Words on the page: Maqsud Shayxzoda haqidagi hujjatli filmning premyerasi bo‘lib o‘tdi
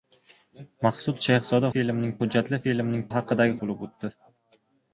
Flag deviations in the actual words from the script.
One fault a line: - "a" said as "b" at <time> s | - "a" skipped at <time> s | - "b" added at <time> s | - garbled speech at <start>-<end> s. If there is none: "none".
- "haqidagi" said as "filmning" at 1.8 s
- "premyerasi" said as "haqidagi" at 3.1 s